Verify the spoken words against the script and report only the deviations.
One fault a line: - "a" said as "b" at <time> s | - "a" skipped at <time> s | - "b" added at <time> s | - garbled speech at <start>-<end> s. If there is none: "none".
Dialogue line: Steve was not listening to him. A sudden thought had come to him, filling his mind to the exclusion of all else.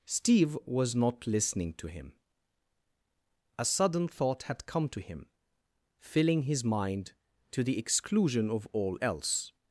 none